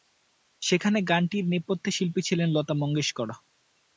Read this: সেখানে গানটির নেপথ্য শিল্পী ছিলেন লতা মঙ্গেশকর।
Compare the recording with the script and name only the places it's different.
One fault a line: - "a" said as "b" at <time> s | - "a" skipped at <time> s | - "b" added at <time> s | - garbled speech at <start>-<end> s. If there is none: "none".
none